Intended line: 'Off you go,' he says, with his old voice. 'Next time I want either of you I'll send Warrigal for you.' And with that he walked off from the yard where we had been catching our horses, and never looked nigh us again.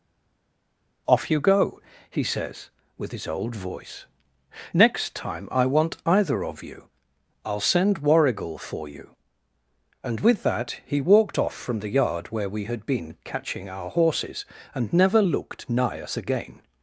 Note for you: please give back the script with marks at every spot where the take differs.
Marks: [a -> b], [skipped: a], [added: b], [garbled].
'Off you go,' he says, with his old voice. 'Next time I want either of you I'll send Warrigal for you.' And with that he walked off from the yard where we had been catching our horses, and never looked nigh us again.